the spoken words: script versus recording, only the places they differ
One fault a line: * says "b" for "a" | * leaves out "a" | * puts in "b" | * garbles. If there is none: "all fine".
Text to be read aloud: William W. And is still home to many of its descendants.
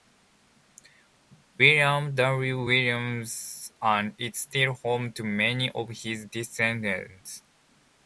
* puts in "Williams"
* says "his" for "its"